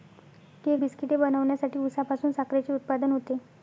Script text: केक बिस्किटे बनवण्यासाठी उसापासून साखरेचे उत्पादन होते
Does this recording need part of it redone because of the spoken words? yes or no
no